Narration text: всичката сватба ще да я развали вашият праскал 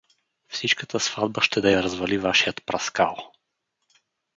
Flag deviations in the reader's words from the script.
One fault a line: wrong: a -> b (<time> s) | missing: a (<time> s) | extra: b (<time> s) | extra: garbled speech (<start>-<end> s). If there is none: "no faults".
no faults